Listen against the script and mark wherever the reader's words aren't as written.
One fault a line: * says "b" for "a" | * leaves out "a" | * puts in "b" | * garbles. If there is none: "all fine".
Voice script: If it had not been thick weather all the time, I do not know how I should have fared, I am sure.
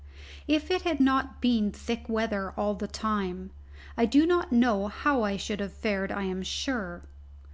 all fine